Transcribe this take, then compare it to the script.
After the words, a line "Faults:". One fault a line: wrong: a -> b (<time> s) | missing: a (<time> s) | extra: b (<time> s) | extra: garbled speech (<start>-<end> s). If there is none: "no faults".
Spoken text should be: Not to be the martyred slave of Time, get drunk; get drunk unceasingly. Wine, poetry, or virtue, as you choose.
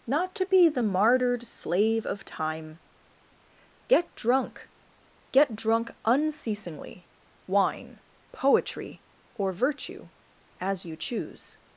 Not to be the martyred slave of Time, get drunk; get drunk unceasingly. Wine, poetry, or virtue, as you choose.
Faults:
no faults